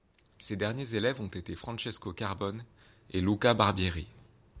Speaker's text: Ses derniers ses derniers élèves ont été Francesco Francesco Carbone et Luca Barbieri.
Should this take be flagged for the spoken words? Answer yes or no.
yes